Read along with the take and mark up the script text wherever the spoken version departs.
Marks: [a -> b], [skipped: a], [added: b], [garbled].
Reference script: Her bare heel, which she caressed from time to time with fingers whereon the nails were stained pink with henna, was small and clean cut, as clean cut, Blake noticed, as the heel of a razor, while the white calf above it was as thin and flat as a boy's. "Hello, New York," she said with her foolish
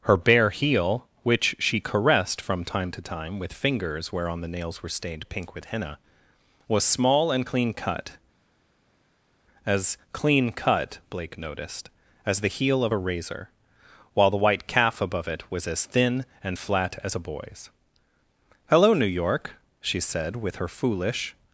Her bare heel, which she caressed from time to time with fingers whereon the nails were stained pink with henna, was small and clean cut, as clean cut, Blake noticed, as the heel of a razor, while the white calf above it was as thin and flat as a boy's. "Hello, New York," she said with her foolish